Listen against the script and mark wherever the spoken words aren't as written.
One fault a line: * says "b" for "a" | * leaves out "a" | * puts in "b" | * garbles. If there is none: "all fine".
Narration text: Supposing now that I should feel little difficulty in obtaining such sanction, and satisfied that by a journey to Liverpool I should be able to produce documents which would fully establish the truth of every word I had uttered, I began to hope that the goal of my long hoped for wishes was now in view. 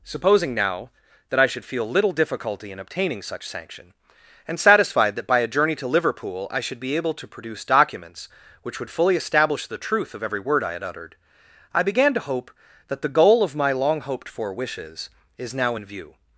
* says "is" for "was"